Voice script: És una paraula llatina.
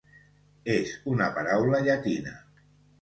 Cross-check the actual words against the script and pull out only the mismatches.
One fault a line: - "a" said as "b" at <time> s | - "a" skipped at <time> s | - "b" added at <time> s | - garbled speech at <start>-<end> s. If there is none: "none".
none